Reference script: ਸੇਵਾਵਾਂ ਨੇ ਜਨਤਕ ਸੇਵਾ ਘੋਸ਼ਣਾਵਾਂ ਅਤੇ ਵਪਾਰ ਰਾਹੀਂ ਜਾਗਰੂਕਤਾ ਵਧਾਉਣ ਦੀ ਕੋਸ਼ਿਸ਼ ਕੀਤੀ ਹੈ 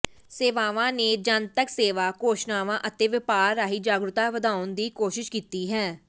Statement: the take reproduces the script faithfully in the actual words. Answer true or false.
true